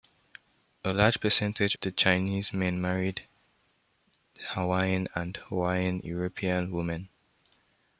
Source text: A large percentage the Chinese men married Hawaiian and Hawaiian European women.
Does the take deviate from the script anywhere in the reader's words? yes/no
no